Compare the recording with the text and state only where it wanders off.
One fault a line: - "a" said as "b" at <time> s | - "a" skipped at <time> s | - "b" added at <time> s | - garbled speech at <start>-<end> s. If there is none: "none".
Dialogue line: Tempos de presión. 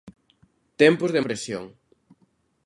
none